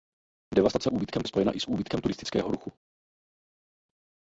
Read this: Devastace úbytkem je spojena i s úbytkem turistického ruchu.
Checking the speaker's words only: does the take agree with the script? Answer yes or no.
yes